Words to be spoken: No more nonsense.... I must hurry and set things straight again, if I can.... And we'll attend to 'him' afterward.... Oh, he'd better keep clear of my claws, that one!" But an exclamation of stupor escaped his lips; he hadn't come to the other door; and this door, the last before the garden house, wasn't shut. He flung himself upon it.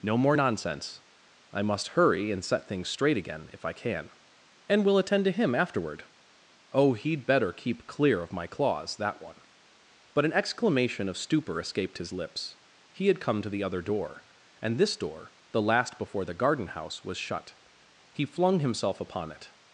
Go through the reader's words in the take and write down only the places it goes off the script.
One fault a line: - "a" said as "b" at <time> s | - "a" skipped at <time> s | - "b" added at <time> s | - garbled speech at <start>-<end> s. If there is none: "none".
- "hadn't" said as "had" at 13.1 s
- "wasn't" said as "was" at 17.0 s